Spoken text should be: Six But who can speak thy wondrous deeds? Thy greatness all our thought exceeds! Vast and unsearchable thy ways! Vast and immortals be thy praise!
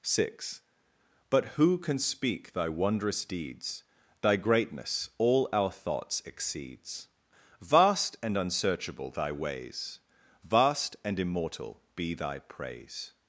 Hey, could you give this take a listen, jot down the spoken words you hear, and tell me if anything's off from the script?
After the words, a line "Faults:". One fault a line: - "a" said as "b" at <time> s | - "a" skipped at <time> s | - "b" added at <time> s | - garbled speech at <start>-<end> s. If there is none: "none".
Six But who can speak thy wondrous deeds? Thy greatness all our thoughts exceeds! Vast and unsearchable thy ways! Vast and immortal be thy praise!
Faults:
- "thought" said as "thoughts" at 5.7 s
- "immortals" said as "immortal" at 11.2 s